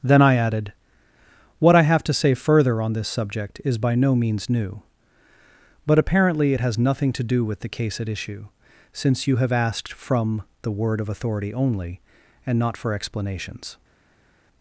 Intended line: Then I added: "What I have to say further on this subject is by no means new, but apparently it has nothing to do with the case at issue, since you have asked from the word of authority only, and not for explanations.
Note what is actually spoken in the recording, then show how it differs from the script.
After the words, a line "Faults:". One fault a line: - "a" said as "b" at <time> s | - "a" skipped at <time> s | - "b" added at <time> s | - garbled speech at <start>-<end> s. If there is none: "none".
Then I added: "What I have to say further on this subject is by no means new, but apparently it has nothing to do with the case at issue, since you have asked from the word of authority only, and not for explanations.
Faults:
none